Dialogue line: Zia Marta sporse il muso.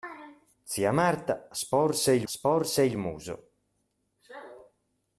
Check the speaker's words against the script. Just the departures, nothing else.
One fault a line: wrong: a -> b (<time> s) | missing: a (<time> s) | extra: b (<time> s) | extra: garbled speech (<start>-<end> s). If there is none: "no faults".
extra: sporse il (2.2 s)